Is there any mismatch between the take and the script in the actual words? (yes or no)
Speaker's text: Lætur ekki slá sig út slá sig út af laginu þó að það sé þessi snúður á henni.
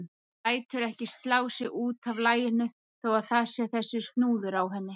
yes